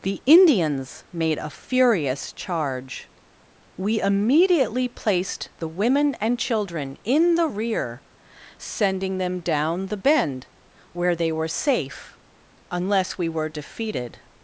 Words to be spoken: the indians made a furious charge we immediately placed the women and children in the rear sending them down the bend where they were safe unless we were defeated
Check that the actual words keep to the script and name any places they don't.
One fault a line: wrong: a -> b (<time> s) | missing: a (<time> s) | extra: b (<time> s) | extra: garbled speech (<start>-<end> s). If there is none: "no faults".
no faults